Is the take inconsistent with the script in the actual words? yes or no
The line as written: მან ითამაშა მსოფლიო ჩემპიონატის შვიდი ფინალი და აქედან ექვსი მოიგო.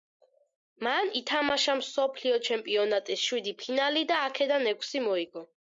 no